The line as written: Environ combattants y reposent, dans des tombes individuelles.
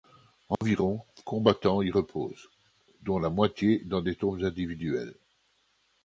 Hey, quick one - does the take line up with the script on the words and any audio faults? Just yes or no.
no